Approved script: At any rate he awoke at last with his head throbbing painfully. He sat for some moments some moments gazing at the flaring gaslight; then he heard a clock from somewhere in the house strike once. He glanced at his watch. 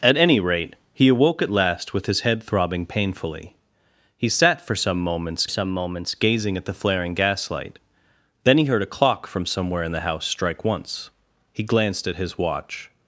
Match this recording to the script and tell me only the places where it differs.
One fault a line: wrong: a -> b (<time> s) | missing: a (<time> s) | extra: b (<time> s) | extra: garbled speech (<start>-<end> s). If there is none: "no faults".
no faults